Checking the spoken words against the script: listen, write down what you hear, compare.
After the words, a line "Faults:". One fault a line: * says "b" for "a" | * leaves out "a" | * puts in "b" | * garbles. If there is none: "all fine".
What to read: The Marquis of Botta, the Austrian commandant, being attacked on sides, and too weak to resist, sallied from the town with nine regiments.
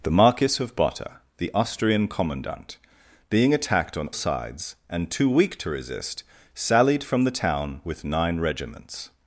The Marquis of Botta, the Austrian commandant, being attacked on sides, and too weak to resist, sallied from the town with nine regiments.
Faults:
all fine